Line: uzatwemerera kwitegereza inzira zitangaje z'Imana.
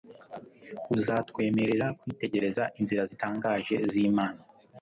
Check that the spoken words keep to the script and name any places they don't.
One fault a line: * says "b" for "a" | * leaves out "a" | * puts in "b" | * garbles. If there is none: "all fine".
all fine